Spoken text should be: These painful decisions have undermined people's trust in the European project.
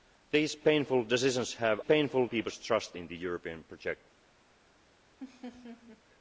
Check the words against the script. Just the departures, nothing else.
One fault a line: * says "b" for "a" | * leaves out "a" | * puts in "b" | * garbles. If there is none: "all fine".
* says "painful" for "undermined"